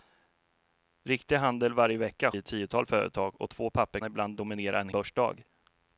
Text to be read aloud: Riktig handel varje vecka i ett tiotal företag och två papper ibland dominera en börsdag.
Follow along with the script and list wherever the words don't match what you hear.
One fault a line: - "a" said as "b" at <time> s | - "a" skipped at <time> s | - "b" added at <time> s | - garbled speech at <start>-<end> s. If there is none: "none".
none